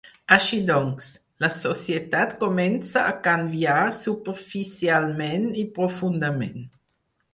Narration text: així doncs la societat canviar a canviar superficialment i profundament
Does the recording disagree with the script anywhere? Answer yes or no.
yes